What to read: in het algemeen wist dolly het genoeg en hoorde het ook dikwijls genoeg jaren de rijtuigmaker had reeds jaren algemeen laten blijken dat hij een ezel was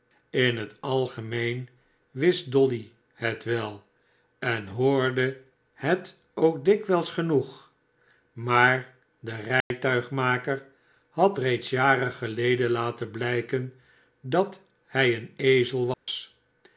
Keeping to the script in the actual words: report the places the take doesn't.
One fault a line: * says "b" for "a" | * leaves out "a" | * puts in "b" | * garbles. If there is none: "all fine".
* says "wel" for "genoeg"
* says "maar" for "jaren"
* says "geleden" for "algemeen"